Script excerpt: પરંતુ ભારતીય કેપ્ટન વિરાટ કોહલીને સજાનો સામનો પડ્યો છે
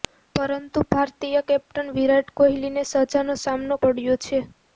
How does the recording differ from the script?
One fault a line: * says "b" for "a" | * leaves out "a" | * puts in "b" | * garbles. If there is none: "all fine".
all fine